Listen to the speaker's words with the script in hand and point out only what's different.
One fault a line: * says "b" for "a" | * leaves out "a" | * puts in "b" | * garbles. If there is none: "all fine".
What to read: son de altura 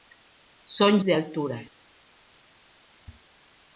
all fine